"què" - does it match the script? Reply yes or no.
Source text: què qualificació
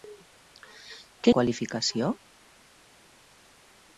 yes